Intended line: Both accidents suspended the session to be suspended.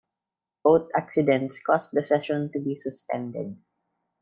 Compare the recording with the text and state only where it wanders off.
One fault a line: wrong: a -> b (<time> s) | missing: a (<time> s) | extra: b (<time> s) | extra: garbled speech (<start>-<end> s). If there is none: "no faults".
wrong: suspended -> caused (1.6 s)